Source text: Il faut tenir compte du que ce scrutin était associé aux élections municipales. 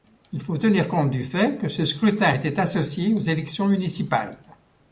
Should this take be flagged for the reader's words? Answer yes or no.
yes